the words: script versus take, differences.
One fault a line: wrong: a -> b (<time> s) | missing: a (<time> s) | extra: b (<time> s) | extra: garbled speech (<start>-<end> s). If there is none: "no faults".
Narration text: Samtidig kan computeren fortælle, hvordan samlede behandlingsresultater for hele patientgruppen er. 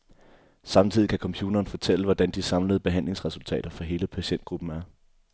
extra: de (2.3 s)